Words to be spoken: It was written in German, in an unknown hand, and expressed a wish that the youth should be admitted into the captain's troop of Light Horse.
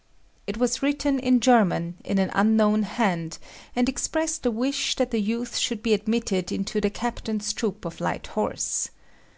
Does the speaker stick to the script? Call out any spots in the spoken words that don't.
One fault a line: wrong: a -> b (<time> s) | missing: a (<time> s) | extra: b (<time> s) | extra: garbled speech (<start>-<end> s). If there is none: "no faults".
no faults